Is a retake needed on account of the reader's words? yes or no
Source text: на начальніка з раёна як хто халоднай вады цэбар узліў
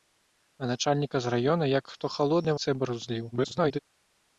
yes